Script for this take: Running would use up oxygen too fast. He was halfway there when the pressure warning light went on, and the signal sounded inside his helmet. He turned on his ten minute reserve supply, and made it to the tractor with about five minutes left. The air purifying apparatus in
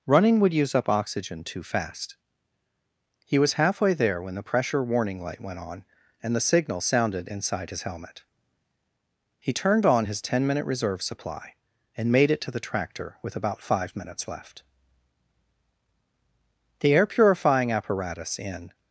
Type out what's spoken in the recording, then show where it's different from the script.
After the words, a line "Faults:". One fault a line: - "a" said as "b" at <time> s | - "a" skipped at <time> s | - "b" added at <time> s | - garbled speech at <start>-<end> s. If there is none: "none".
Running would use up oxygen too fast. He was halfway there when the pressure warning light went on, and the signal sounded inside his helmet. He turned on his ten minute reserve supply, and made it to the tractor with about five minutes left. The air purifying apparatus in
Faults:
none